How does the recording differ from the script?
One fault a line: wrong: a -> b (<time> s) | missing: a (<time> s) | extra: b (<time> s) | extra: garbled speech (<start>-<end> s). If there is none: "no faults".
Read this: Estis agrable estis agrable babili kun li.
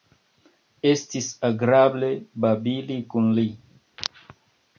missing: estis agrable (2.1 s)